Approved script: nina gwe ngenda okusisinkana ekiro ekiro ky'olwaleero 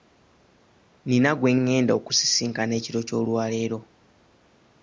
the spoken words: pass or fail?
fail